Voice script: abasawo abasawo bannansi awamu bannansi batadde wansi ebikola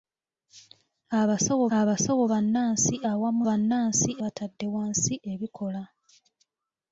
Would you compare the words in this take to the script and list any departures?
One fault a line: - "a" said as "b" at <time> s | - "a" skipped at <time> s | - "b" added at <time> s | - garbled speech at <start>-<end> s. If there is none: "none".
none